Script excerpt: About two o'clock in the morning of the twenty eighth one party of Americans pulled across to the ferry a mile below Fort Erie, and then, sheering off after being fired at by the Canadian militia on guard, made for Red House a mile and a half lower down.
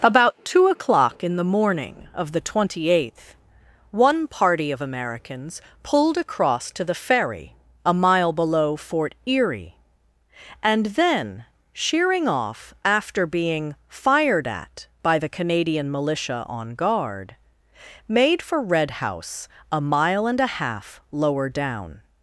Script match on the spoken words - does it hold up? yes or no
yes